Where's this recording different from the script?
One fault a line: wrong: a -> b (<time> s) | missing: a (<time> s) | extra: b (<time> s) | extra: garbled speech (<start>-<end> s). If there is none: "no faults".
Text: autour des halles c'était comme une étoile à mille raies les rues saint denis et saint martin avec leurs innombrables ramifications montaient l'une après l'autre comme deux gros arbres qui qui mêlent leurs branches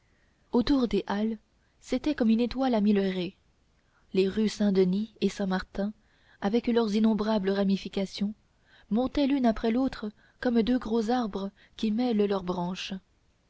missing: qui (11.9 s)